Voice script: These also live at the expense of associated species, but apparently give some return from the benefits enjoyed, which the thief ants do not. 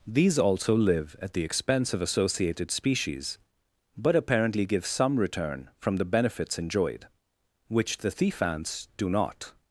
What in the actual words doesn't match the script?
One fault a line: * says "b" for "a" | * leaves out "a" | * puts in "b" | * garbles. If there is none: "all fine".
all fine